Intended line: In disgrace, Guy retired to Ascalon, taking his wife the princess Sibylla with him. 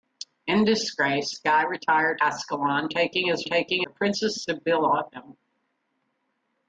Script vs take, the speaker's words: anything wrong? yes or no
yes